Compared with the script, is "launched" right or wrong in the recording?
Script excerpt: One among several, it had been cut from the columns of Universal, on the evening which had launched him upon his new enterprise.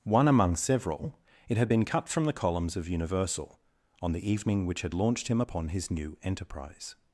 right